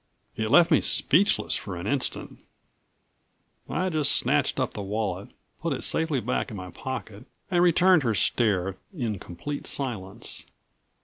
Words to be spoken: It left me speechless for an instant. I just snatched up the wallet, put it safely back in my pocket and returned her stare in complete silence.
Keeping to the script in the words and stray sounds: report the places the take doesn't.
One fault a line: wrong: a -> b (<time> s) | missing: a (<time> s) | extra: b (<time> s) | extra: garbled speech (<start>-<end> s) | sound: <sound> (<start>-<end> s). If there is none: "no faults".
no faults